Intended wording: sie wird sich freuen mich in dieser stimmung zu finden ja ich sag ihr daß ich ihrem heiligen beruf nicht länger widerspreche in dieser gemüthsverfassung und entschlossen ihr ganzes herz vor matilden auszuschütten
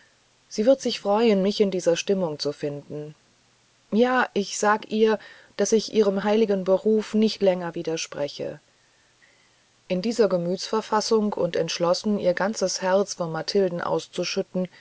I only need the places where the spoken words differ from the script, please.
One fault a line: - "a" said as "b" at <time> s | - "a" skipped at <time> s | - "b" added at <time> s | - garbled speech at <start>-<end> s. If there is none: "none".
none